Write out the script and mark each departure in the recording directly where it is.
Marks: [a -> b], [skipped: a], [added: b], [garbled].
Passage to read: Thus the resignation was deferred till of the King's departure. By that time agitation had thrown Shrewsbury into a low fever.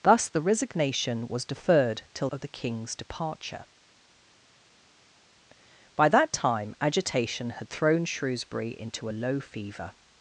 Thus the resignation was deferred till of the King's departure. By that time agitation had thrown Shrewsbury into a low fever.